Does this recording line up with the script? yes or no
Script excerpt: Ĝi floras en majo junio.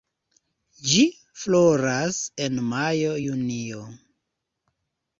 yes